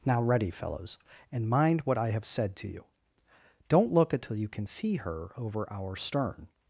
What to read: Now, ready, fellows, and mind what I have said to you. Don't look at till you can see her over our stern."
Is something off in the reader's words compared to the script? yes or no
no